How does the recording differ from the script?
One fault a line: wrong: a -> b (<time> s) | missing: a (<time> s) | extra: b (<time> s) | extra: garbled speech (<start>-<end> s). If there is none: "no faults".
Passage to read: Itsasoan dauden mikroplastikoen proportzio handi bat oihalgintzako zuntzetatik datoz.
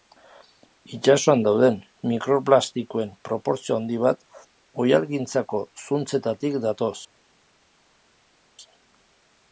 no faults